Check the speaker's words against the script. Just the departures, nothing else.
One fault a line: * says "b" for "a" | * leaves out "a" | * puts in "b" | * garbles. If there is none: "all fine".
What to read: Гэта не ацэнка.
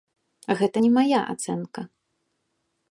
* puts in "мая"